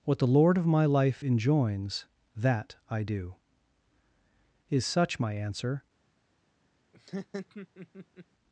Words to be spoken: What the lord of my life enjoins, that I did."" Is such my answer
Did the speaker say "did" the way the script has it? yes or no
no